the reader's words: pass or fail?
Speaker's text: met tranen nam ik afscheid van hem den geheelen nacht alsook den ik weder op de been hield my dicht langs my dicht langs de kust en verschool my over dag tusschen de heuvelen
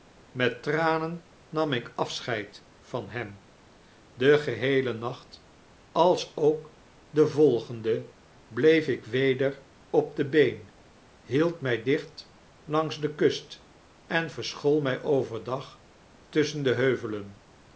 fail